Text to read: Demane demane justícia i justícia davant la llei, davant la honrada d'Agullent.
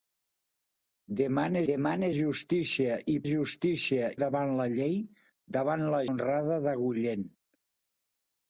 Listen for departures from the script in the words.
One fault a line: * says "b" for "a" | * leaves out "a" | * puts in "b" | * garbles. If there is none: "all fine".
all fine